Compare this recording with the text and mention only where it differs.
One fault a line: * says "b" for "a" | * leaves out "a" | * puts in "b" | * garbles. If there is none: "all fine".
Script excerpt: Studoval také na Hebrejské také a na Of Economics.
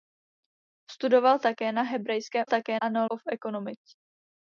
all fine